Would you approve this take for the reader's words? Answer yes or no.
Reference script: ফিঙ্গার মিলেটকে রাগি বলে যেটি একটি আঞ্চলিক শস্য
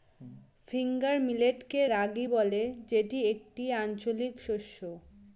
yes